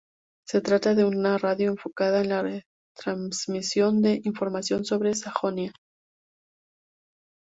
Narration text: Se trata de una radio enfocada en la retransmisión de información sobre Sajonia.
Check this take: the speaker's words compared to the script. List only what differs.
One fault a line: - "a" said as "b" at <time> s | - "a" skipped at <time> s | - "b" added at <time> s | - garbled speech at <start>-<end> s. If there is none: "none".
none